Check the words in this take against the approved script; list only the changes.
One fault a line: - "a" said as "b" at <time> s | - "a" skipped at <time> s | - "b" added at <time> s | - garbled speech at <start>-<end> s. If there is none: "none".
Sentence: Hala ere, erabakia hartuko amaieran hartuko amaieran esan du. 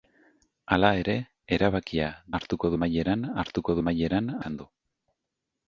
none